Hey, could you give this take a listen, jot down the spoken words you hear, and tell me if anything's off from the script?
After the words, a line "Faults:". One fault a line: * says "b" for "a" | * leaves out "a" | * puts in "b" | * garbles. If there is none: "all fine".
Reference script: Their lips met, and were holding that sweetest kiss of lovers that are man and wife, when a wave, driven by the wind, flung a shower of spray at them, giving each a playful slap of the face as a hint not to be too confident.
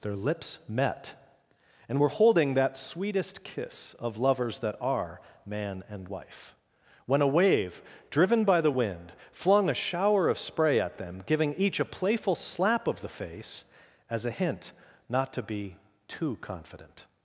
Their lips met, and were holding that sweetest kiss of lovers that are man and wife, when a wave, driven by the wind, flung a shower of spray at them, giving each a playful slap of the face as a hint not to be too confident.
Faults:
all fine